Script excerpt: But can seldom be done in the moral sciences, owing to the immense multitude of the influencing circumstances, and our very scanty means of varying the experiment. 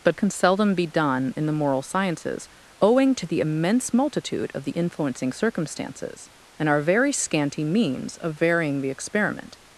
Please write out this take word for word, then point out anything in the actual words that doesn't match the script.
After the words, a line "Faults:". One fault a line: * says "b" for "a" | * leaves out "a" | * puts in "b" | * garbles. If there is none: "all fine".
But can seldom be done in the moral sciences, owing to the immense multitude of the influencing circumstances, and our very scanty means of varying the experiment.
Faults:
all fine